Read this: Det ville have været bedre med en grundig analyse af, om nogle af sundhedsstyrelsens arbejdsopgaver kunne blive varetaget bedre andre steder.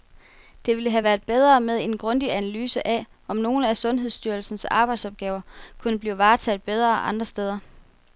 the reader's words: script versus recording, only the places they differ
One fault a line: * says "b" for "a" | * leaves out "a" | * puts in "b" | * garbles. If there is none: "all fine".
all fine